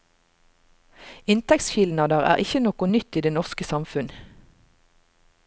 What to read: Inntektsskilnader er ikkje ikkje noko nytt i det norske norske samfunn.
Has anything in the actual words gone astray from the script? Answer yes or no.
yes